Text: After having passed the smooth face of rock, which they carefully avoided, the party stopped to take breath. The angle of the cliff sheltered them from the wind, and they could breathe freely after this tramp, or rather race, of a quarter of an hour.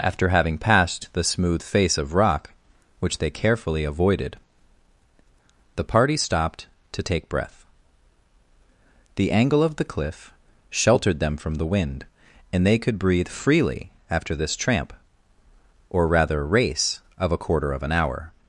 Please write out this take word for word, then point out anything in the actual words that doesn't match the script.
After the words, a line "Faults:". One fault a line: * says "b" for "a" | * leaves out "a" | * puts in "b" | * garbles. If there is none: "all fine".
After having passed the smooth face of rock, which they carefully avoided, the party stopped to take breath. The angle of the cliff sheltered them from the wind, and they could breathe freely after this tramp, or rather race, of a quarter of an hour.
Faults:
all fine